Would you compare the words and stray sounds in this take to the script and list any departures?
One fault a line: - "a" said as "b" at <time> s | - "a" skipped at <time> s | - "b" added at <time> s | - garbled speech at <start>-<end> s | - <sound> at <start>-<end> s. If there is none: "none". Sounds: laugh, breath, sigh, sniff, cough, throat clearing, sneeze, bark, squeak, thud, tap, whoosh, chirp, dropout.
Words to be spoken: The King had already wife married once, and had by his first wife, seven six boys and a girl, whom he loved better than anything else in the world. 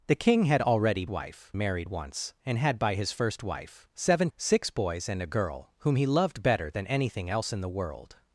none